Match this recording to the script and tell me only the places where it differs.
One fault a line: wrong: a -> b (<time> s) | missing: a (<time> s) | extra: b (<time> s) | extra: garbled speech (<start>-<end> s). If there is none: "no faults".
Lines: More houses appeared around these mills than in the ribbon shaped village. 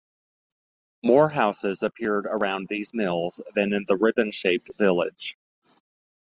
no faults